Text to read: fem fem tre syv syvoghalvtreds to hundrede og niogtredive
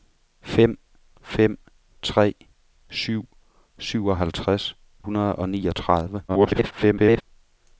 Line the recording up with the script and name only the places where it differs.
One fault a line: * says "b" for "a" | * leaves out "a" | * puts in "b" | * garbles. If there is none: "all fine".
* leaves out "to"
* garbles